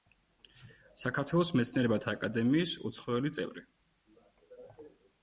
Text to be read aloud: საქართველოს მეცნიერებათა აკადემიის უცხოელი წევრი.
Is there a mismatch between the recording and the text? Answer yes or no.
no